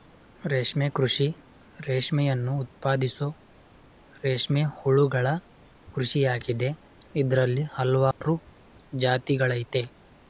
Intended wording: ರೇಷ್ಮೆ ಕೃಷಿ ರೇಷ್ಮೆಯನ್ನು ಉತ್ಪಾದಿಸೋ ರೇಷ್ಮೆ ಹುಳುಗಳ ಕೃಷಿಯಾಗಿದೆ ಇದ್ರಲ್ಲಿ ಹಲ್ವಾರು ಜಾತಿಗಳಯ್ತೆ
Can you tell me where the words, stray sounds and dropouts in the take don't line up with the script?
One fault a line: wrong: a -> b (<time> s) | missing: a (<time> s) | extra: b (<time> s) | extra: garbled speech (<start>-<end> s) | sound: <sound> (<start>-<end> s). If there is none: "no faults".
sound: dropout (8.1-8.2 s)